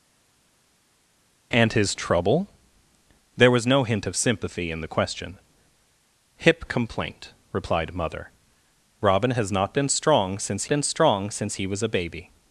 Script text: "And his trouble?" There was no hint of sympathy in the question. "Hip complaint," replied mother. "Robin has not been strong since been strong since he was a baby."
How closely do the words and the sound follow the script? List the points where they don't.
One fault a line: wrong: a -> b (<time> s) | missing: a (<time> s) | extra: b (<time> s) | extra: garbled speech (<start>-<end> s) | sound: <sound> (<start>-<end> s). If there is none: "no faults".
no faults